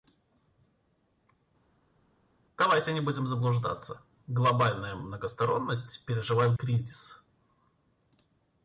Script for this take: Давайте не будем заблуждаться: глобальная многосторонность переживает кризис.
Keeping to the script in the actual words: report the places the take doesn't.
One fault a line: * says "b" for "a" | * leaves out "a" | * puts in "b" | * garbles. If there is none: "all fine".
all fine